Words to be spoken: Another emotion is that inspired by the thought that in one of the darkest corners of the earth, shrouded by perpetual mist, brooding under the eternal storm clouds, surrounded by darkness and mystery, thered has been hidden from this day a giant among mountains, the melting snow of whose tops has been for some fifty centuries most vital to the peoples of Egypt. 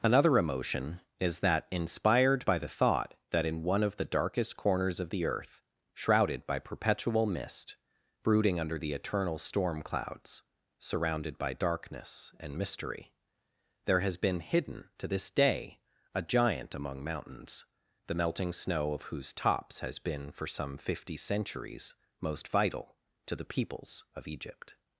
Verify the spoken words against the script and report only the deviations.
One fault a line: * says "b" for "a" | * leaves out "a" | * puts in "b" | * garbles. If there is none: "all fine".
* says "there" for "thered"
* says "to" for "from"